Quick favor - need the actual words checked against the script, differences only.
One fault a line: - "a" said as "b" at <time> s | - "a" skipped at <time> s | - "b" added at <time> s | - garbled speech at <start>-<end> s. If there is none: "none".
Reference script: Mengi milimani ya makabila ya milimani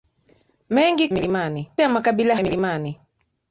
none